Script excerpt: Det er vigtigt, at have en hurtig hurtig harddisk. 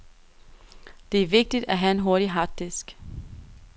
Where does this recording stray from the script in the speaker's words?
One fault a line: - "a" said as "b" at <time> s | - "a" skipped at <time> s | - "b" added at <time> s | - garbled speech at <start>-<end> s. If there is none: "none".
- "hurtig" skipped at 2.3 s